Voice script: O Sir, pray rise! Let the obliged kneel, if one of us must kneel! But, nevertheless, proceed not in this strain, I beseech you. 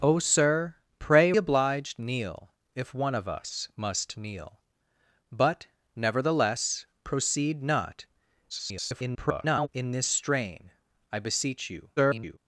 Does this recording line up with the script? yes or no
no